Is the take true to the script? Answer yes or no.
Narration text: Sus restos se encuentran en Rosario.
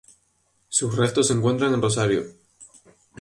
yes